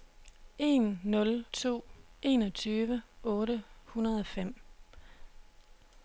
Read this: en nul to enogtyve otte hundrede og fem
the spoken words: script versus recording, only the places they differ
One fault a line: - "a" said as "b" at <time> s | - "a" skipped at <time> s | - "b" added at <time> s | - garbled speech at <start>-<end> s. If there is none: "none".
none